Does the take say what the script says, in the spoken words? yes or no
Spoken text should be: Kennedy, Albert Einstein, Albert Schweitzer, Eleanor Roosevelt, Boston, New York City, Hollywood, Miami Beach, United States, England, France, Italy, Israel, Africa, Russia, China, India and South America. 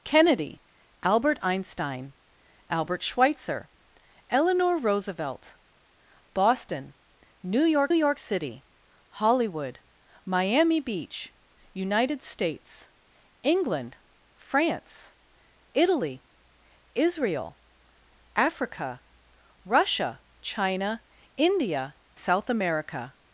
no